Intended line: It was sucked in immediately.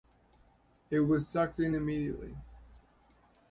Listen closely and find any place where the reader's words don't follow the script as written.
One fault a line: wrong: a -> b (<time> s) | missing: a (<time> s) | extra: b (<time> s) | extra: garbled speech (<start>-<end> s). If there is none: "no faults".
no faults